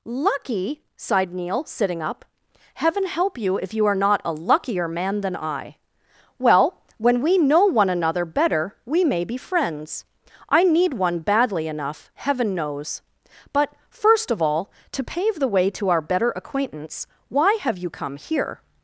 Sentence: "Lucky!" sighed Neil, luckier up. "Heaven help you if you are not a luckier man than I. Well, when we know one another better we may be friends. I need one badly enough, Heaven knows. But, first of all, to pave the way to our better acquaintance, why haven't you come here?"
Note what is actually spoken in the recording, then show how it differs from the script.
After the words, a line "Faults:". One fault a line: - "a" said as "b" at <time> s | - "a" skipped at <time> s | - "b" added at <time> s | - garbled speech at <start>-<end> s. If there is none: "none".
"Lucky!" sighed Neil, sitting up. "Heaven help you if you are not a luckier man than I. Well, when we know one another better we may be friends. I need one badly enough, Heaven knows. But, first of all, to pave the way to our better acquaintance, why have you come here?"
Faults:
- "luckier" said as "sitting" at 1.6 s
- "haven't" said as "have" at 17.6 s